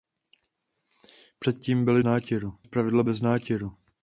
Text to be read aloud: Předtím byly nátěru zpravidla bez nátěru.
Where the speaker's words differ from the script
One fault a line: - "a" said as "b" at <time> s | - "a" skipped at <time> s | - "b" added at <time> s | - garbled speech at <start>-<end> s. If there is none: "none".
none